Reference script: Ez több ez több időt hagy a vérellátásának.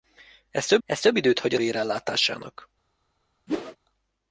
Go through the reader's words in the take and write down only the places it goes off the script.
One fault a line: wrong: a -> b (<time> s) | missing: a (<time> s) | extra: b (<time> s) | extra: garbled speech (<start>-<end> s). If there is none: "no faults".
no faults